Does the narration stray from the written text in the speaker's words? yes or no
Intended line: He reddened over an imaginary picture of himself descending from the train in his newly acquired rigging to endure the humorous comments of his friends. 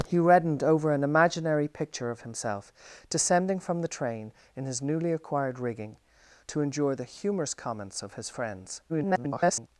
yes